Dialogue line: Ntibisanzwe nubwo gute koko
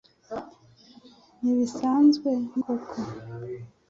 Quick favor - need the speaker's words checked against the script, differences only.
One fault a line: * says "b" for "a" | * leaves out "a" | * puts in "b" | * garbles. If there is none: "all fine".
* leaves out "nubwo gute"